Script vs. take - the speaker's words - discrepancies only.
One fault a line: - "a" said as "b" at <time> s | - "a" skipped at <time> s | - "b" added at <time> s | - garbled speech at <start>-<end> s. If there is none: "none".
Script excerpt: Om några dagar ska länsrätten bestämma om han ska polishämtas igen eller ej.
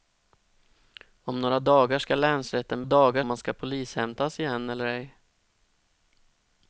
- "bestämma" said as "dagar" at 2.8 s